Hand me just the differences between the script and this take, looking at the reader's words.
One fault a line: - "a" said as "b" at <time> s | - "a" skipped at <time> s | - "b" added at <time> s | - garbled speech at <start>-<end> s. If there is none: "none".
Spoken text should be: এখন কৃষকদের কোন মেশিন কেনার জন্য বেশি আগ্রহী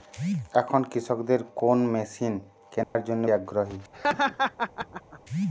- "বেশি" skipped at 3.2 s